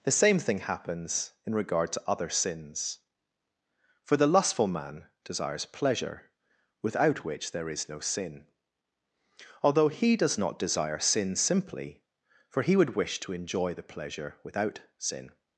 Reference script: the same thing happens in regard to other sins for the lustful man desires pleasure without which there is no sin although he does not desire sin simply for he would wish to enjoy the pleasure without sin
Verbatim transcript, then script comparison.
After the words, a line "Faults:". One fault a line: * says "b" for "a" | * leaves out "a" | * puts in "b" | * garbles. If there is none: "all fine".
the same thing happens in regard to other sins for the lustful man desires pleasure without which there is no sin although he does not desire sin simply for he would wish to enjoy the pleasure without sin
Faults:
all fine